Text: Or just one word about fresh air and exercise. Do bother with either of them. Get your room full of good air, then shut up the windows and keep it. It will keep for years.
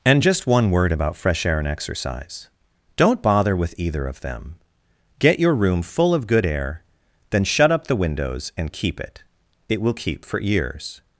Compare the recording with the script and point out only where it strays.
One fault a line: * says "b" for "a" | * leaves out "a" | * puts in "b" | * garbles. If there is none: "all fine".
* says "And" for "Or"
* says "Don't" for "Do"